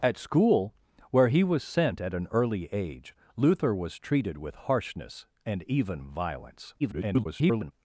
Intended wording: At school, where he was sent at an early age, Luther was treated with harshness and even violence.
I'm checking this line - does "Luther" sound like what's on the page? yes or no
yes